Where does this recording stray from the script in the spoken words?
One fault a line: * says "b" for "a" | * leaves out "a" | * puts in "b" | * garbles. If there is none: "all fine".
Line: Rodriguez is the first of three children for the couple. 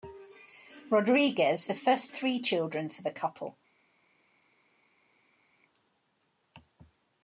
* leaves out "is"
* leaves out "of"